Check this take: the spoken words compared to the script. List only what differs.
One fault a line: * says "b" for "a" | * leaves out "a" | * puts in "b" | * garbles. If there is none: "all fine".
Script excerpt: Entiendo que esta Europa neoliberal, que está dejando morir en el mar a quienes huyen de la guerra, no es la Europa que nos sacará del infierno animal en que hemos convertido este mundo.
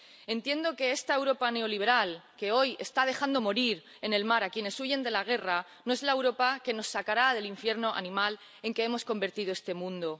* puts in "hoy"